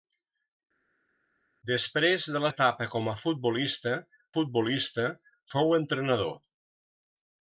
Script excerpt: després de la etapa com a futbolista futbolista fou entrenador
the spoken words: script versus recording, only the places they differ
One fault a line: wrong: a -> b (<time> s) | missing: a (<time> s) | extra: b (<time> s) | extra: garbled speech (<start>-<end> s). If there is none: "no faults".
no faults